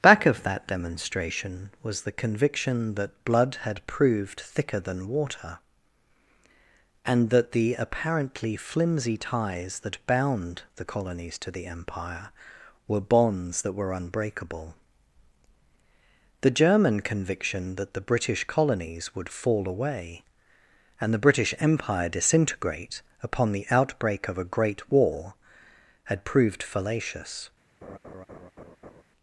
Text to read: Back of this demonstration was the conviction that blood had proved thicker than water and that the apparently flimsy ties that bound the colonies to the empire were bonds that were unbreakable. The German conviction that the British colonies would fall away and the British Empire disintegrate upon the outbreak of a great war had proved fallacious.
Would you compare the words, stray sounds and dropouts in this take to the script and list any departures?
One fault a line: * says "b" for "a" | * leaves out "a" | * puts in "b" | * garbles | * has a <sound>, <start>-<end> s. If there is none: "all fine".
* says "that" for "this"
* has a laugh, 27.8-29.0 s